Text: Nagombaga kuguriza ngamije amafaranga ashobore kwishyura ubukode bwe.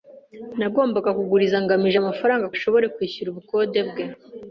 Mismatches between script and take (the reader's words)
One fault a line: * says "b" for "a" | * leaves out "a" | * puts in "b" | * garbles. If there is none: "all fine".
all fine